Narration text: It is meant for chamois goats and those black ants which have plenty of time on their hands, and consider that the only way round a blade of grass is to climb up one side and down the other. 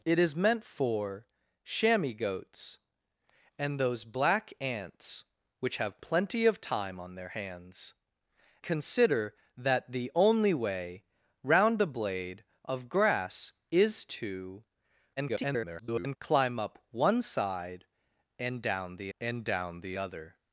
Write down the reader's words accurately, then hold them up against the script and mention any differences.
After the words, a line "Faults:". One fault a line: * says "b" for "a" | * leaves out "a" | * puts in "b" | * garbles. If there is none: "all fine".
It is meant for chamois goats and those black ants which have plenty of time on their hands, consider that the only way round a blade of grass is to [garbled] climb up one side and down the and down the other.
Faults:
* leaves out "and"
* garbles
* puts in "and down the"